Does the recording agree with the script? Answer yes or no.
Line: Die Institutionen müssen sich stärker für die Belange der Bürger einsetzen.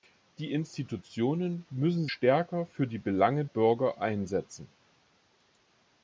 no